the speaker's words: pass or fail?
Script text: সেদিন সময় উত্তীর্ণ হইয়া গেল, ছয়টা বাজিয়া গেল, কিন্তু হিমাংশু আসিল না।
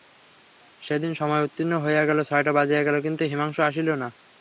pass